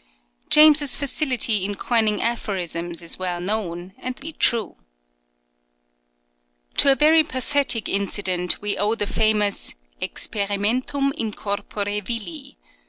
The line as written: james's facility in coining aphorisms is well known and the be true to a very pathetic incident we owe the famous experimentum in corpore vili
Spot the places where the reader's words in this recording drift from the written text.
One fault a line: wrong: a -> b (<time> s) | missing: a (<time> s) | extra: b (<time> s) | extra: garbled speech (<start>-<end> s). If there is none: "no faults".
no faults